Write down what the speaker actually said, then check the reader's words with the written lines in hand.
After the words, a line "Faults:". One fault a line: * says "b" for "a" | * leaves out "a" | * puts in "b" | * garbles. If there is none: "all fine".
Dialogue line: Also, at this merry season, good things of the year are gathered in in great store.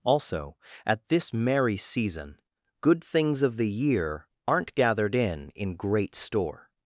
Also, at this merry season, good things of the year aren't gathered in in great store.
Faults:
* says "aren't" for "are"